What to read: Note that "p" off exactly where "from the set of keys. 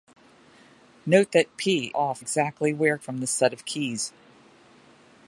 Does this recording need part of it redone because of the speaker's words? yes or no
no